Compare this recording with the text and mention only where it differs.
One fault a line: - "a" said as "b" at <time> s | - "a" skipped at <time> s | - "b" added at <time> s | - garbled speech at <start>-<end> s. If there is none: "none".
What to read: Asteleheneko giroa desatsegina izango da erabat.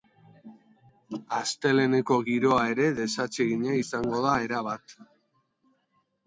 - "ere" added at 2.8 s